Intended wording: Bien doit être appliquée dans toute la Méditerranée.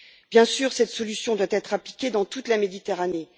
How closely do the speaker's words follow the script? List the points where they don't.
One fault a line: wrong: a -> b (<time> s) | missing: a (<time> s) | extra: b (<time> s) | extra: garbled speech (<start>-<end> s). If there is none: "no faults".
extra: sûr cette solution (0.5 s)